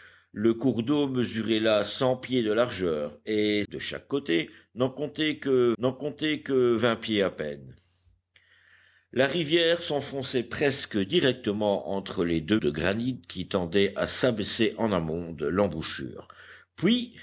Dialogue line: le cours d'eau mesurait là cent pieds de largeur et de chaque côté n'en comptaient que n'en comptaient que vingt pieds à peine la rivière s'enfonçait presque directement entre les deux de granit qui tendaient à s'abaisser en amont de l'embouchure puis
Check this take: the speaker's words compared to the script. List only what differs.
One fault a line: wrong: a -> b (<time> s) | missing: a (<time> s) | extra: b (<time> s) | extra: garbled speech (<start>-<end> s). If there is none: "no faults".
no faults